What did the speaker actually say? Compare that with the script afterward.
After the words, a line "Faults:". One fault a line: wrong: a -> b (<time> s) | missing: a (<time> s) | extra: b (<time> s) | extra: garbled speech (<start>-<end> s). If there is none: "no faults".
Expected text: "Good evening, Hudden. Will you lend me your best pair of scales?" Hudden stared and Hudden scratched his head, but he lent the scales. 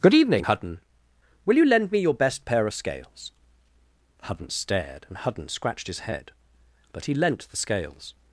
"Good evening, Hudden. Will you lend me your best pair of scales?" Hudden stared and Hudden scratched his head, but he lent the scales.
Faults:
no faults